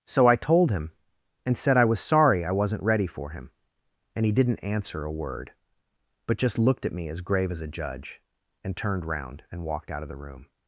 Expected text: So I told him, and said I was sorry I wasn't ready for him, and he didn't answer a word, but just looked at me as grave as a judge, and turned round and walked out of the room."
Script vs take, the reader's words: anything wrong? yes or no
no